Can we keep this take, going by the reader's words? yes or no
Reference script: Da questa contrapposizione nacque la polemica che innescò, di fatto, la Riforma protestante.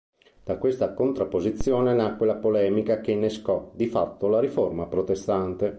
yes